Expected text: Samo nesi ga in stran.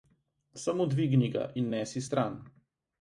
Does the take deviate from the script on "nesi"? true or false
true